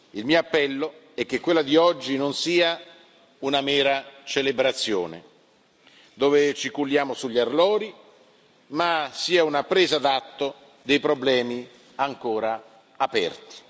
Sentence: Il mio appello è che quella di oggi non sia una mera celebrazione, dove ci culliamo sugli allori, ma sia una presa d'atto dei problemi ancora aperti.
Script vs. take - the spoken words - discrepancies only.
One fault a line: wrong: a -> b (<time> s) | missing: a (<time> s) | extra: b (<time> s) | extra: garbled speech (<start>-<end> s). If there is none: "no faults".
no faults